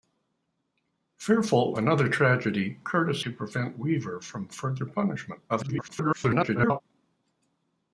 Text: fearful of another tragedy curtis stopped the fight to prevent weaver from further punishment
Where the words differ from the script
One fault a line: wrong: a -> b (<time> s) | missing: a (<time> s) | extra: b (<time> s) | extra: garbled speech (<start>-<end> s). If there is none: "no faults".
missing: of (1.8 s)
missing: stopped the fight (3.2 s)
extra: garbled speech (5.5-6.8 s)